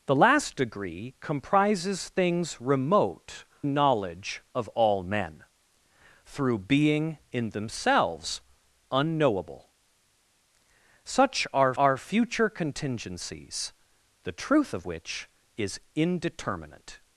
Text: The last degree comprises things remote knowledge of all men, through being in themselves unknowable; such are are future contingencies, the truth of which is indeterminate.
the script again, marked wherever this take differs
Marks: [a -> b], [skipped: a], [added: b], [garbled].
The last degree comprises things remote knowledge of all men, through being in themselves unknowable; such are are future contingencies, the truth of which is indeterminate.